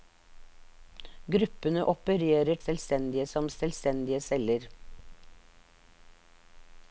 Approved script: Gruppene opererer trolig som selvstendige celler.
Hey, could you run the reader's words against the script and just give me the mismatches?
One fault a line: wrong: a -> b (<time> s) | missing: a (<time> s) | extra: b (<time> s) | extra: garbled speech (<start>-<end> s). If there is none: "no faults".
wrong: trolig -> selvstendige (2.6 s)